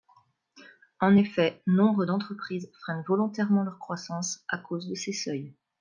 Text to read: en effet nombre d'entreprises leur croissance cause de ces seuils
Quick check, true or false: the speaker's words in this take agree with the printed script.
false